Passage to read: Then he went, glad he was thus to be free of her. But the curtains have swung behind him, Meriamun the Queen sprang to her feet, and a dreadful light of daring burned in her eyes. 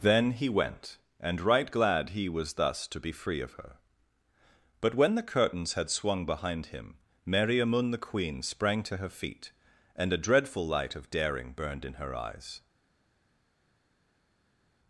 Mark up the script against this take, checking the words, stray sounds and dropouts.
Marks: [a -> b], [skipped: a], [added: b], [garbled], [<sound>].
Then he went, [added: and right] glad he was thus to be free of her. But [added: when] the curtains [have -> had] swung behind him, Meriamun the Queen sprang to her feet, and a dreadful light of daring burned in her eyes.